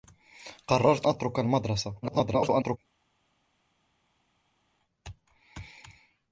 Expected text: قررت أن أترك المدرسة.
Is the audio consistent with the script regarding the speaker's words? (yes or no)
no